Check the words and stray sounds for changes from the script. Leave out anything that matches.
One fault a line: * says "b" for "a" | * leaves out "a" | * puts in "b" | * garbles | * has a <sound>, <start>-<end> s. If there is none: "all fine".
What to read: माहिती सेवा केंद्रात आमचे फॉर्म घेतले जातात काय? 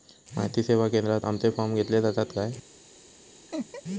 * has a laugh, 3.5-3.8 s